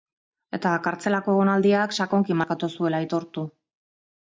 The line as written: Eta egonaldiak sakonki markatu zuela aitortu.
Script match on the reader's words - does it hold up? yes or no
no